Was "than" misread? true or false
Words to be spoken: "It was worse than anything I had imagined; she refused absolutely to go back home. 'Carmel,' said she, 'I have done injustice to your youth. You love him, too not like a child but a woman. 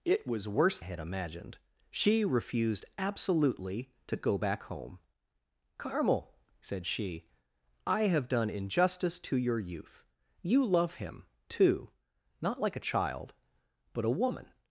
true